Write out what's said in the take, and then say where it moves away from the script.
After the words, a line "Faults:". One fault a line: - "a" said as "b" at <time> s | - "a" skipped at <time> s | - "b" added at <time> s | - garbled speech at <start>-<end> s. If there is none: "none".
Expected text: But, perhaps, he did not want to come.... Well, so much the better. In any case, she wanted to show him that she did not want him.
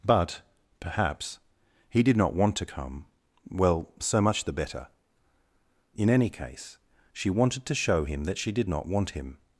But, perhaps, he did not want to come.... Well, so much the better. In any case, she wanted to show him that she did not want him.
Faults:
none